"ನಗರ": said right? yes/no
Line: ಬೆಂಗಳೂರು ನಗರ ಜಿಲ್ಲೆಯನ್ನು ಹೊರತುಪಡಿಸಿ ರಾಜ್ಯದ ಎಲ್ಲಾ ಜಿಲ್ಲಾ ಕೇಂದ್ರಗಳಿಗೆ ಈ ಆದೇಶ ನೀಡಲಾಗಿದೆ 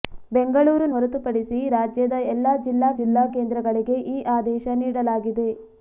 no